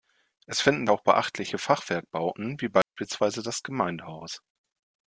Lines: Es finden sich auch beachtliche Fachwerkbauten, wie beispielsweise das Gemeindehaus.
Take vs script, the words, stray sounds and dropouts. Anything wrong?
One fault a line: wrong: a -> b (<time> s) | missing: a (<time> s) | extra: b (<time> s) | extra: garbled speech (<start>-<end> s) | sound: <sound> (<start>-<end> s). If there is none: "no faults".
missing: sich (0.9 s)
sound: dropout (2.8-3.0 s)